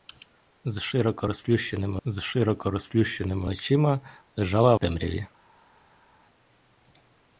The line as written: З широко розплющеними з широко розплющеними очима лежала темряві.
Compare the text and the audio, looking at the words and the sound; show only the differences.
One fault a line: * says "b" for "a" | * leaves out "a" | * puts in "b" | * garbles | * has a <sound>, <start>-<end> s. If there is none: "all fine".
all fine